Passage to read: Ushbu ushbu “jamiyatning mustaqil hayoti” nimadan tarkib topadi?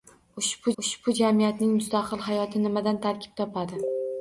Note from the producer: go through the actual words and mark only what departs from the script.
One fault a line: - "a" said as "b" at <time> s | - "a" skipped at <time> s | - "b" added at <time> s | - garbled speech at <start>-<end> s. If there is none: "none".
none